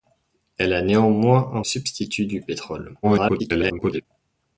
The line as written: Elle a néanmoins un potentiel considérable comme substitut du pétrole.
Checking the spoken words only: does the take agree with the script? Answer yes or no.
no